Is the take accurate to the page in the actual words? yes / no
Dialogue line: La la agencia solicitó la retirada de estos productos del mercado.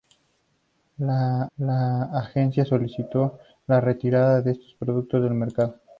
yes